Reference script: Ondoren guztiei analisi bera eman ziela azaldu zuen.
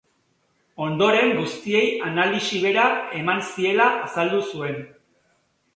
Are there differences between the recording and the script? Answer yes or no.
no